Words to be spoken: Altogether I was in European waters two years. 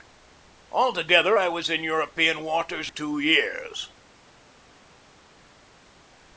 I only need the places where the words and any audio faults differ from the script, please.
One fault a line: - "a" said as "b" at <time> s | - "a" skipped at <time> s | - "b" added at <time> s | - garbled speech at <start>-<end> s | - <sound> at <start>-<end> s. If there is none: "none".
none